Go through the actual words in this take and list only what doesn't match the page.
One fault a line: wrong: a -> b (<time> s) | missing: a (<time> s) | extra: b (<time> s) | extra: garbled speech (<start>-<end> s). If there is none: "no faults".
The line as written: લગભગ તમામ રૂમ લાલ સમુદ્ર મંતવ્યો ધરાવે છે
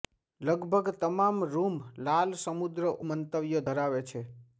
no faults